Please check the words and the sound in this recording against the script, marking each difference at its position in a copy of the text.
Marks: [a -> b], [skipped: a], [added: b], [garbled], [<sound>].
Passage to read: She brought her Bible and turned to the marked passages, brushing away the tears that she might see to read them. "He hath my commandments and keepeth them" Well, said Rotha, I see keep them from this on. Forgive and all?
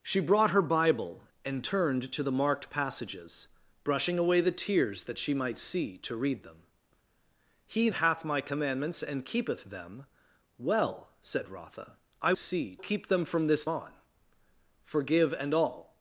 She brought her Bible and turned to the marked passages, brushing away the tears that she might see to read them. "He hath my commandments and keepeth them" Well, said Rotha, I see keep them from this on. Forgive and all?